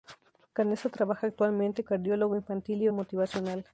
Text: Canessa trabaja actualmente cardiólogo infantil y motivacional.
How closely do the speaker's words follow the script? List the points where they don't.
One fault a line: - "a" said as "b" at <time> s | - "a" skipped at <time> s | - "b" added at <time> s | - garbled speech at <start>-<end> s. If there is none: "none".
none